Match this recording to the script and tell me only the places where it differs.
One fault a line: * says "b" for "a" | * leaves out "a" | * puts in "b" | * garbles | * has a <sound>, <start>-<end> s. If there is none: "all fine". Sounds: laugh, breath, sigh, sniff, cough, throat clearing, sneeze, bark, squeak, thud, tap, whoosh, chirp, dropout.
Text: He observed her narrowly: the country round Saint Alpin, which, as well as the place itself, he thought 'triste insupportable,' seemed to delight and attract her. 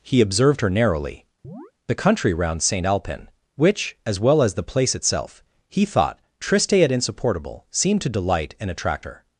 * has a chirp, 1.4-1.7 s
* puts in "et"